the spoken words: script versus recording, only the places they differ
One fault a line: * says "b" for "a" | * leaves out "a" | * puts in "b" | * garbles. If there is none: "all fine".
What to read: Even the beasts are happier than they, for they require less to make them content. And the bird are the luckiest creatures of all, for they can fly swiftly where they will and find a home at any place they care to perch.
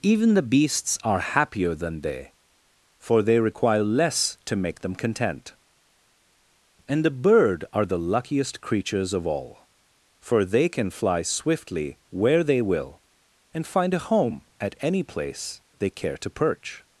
all fine